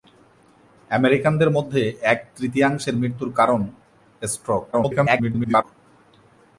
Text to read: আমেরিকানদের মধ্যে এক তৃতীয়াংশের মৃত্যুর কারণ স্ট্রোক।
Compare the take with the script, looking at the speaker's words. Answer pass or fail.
fail